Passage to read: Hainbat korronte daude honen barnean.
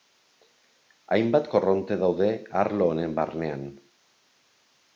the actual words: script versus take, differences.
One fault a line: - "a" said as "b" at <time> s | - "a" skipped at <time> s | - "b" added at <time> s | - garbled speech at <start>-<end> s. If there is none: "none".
- "arlo" added at 2.6 s